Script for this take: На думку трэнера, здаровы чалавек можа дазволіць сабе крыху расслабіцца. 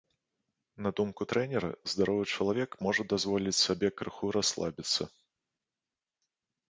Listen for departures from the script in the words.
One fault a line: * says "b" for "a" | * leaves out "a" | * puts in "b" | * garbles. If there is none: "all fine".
all fine